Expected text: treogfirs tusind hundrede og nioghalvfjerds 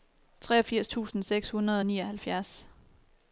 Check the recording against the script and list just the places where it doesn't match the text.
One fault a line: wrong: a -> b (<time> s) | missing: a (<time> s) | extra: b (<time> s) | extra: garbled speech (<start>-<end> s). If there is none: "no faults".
extra: seks (1.2 s)